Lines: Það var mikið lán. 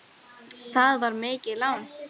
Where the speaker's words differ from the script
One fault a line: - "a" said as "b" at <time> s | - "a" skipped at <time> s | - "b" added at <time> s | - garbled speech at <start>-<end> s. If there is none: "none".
none